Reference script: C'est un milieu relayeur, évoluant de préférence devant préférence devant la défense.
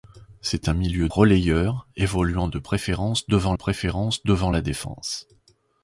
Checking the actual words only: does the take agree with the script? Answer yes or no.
yes